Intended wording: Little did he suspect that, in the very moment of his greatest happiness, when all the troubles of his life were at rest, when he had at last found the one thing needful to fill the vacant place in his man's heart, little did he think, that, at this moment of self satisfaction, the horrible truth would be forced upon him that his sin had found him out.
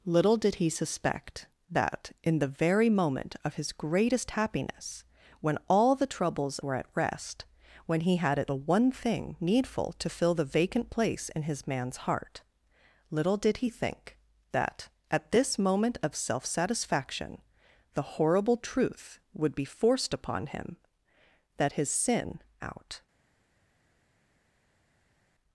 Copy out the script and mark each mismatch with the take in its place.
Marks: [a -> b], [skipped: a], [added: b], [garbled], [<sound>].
Little did he suspect that, in the very moment of his greatest happiness, when all the troubles [skipped: of his life] were at rest, when he had at [skipped: last found] the one thing needful to fill the vacant place in his man's heart, little did he think, that, at this moment of self satisfaction, the horrible truth would be forced upon him that his sin [skipped: had found him] out.